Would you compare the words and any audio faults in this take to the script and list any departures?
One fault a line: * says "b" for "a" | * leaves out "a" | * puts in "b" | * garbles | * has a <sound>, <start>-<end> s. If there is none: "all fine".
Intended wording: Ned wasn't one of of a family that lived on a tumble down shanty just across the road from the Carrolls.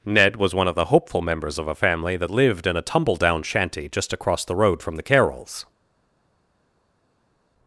* says "was" for "wasn't"
* puts in "the hopeful members"
* says "in" for "on"